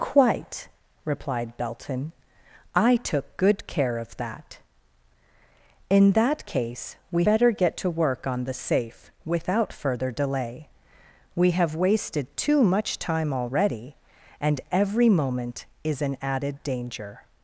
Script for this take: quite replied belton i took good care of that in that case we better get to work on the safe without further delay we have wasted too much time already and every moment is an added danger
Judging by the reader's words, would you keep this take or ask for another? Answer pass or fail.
pass